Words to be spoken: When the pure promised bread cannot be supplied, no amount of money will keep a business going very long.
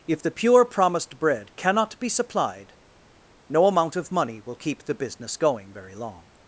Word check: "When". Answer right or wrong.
wrong